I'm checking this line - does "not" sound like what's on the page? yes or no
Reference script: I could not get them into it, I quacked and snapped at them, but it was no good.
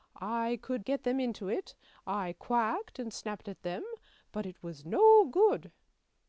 no